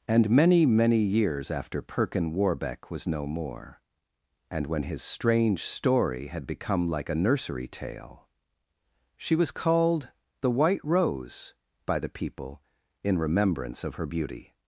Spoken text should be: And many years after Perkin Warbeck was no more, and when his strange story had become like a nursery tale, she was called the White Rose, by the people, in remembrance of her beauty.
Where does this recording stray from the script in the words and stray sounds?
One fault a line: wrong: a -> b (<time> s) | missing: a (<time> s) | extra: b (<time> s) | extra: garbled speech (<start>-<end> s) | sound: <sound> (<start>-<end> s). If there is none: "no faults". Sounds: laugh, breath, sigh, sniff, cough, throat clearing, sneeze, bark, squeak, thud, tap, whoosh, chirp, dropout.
extra: many (0.7 s)